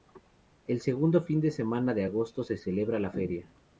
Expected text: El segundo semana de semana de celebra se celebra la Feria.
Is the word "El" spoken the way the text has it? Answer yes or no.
yes